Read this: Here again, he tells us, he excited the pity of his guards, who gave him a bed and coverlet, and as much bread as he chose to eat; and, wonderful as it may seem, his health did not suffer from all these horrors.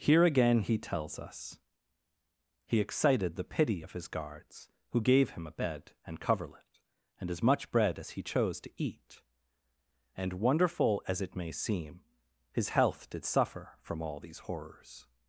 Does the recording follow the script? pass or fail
fail